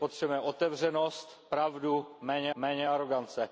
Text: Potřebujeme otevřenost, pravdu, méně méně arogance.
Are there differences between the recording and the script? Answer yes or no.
no